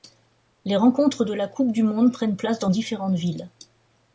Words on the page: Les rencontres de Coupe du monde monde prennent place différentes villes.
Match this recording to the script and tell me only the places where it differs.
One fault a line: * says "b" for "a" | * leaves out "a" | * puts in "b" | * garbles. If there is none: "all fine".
* puts in "la"
* leaves out "monde"
* puts in "dans"